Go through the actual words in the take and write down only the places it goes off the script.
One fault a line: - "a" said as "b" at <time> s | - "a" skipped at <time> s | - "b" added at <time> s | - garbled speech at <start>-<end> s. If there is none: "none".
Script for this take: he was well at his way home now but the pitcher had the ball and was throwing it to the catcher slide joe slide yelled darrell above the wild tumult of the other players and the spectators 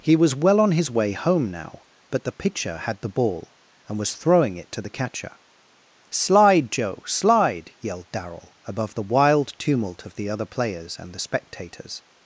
- "at" said as "on" at 0.6 s